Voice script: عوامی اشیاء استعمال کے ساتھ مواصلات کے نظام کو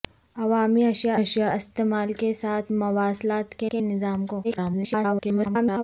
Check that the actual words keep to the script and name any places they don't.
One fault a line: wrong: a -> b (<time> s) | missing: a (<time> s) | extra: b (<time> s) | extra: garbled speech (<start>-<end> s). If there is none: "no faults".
extra: اشیاء (1.2 s)
extra: کے (3.7 s)
extra: garbled speech (4.4-5.8 s)